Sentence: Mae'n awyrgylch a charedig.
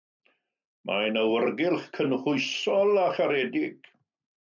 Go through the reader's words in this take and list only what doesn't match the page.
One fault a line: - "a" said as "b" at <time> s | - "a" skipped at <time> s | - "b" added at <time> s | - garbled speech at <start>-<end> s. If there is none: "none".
- "cynhwysol" added at 2.0 s